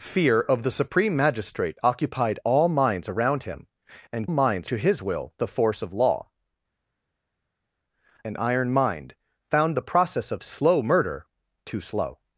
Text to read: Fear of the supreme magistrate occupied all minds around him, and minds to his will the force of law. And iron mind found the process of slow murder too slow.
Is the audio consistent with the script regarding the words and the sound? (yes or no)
yes